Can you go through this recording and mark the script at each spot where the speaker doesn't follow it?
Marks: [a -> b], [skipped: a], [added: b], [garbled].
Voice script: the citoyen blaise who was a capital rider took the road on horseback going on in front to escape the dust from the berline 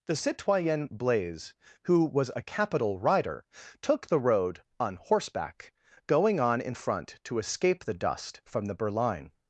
the citoyen blaise who was a capital rider took the road on horseback going on in front to escape the dust from the berline